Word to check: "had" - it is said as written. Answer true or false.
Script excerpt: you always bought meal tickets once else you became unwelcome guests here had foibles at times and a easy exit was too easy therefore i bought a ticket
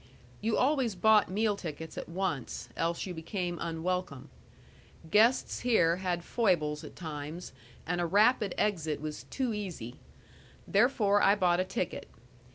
true